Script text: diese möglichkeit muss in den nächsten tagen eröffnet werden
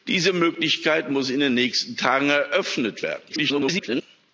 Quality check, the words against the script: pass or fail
fail